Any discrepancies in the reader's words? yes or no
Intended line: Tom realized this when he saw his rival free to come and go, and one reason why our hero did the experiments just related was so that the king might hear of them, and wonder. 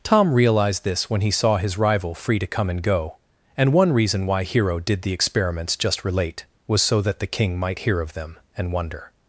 yes